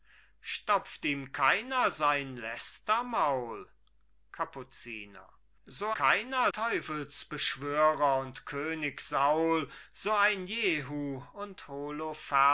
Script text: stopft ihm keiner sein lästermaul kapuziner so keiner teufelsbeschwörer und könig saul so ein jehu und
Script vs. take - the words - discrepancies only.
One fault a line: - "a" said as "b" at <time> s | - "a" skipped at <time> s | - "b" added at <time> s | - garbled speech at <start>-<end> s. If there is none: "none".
none